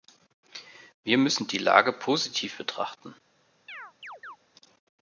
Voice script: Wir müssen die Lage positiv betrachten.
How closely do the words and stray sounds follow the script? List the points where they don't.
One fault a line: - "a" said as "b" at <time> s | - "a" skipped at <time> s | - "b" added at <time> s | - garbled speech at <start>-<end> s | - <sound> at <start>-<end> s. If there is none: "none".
- chirp at 3.7-4.4 s